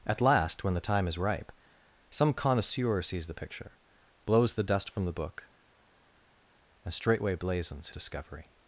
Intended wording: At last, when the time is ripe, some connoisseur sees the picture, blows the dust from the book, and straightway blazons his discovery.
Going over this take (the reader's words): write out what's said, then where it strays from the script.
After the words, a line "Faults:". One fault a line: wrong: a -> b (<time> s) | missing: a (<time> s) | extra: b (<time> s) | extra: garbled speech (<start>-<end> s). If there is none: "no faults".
At last, when the time is ripe, some connoisseur sees the picture, blows the dust from the book, and straightway blazons discovery.
Faults:
missing: his (7.9 s)